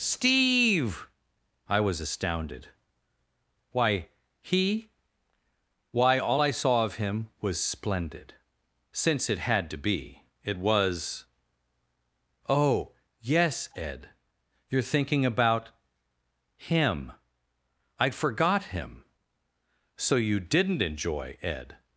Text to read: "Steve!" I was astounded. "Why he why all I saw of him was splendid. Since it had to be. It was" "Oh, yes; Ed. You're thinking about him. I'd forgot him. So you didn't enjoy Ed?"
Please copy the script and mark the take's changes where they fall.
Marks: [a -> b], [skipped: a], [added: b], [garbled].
"Steve!" I was astounded. "Why he why all I saw of him was splendid. Since it had to be. It was" "Oh, yes; Ed. You're thinking about him. I'd forgot him. So you didn't enjoy Ed?"